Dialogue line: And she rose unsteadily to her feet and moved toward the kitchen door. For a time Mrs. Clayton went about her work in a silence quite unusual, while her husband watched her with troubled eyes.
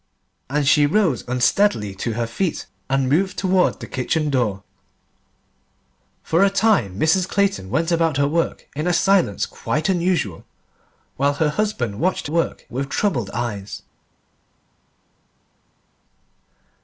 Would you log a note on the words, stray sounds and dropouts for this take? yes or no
yes